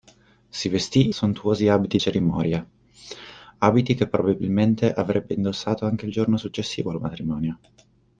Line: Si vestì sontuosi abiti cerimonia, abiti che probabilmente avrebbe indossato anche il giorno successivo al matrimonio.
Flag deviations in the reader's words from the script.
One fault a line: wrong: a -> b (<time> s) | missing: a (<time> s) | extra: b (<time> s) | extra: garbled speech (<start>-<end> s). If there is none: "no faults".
no faults